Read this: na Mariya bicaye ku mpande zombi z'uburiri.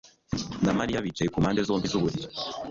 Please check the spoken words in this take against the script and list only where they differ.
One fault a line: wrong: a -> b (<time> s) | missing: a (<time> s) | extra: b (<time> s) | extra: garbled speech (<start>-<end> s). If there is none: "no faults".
no faults